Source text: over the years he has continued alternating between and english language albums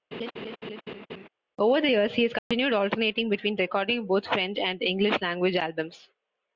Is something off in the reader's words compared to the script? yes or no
yes